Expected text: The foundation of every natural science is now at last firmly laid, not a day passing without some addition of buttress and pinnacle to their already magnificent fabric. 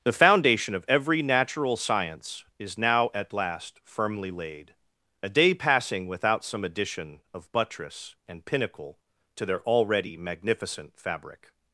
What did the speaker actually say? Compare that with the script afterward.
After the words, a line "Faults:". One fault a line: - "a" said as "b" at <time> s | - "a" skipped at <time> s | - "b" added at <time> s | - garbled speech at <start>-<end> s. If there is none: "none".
The foundation of every natural science is now at last firmly laid, a day passing without some addition of buttress and pinnacle to their already magnificent fabric.
Faults:
- "not" skipped at 4.7 s